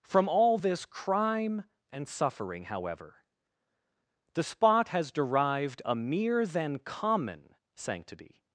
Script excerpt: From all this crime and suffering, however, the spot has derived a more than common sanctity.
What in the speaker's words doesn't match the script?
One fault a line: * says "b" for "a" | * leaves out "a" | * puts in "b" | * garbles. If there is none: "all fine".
* says "mere" for "more"